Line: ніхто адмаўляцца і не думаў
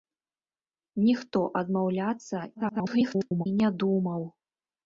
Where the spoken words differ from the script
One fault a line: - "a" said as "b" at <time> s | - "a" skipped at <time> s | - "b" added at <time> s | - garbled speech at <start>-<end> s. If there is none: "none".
- garbled speech at 2.5-3.5 s